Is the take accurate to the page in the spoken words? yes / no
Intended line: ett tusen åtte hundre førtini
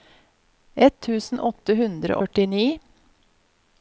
yes